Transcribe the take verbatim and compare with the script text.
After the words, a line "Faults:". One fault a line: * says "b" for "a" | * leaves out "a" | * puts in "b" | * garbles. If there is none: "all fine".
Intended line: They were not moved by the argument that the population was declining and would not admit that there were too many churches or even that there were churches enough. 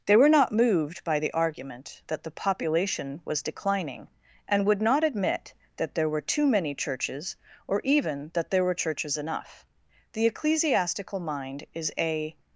They were not moved by the argument that the population was declining and would not admit that there were too many churches or even that there were churches enough. The ecclesiastical mind is a
Faults:
* puts in "The ecclesiastical mind is a"